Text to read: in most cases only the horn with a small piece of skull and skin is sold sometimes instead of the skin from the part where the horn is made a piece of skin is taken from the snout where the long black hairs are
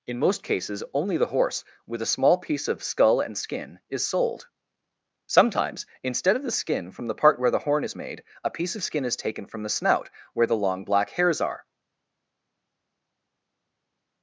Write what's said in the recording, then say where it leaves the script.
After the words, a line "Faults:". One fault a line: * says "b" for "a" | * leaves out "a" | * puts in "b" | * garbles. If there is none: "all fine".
in most cases only the horse with a small piece of skull and skin is sold sometimes instead of the skin from the part where the horn is made a piece of skin is taken from the snout where the long black hairs are
Faults:
* says "horse" for "horn"